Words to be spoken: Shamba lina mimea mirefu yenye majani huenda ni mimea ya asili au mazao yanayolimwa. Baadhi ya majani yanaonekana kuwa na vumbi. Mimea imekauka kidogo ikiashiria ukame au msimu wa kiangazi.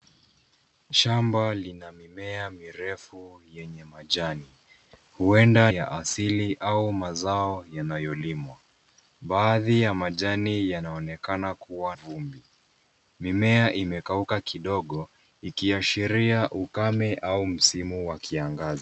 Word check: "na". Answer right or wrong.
wrong